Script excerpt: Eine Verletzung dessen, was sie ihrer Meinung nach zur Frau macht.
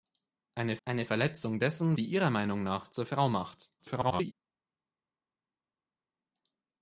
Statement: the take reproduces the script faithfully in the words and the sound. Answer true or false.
false